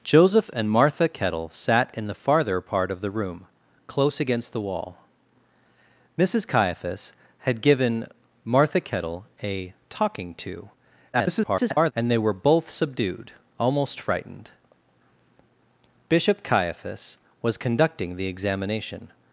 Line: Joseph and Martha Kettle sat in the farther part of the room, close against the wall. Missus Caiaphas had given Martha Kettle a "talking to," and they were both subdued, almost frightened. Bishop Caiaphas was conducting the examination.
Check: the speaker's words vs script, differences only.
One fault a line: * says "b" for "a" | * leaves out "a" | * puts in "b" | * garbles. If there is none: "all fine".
* garbles